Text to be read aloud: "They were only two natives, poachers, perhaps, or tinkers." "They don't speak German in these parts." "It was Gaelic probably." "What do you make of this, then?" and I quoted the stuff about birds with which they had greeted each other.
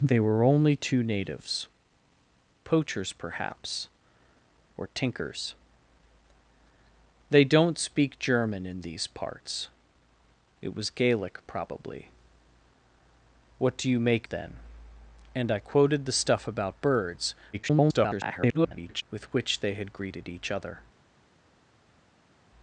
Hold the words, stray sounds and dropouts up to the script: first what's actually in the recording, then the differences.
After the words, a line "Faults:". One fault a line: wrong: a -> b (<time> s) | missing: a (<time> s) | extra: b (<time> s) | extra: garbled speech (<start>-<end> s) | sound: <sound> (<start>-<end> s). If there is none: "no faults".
"They were only two natives, poachers, perhaps, or tinkers." "They don't speak German in these parts." "It was Gaelic probably." "What do you make then?" and I quoted the stuff about birds [garbled] with which they had greeted each other.
Faults:
missing: of this (14.3 s)
extra: garbled speech (17.5-19.0 s)